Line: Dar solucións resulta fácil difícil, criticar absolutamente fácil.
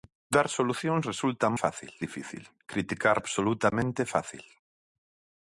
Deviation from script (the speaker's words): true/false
false